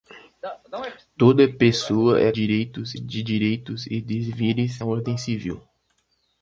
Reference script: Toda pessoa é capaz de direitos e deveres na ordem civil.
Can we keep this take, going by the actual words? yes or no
no